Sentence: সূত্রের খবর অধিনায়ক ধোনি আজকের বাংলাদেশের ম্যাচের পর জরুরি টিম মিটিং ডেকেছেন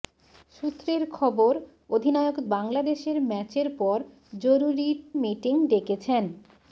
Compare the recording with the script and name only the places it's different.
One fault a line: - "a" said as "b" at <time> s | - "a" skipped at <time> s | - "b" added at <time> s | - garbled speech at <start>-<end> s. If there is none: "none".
- "ধোনি আজকের" skipped at 2.4 s
- "টিম" skipped at 4.9 s